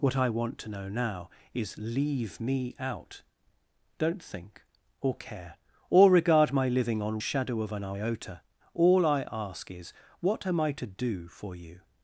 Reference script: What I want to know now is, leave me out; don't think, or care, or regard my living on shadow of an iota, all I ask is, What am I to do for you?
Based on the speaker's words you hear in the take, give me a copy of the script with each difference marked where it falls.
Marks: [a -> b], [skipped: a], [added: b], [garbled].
What I want to know now is, leave me out; don't think, or care, or regard my living on shadow of an iota, all I ask is, What am I to do for you?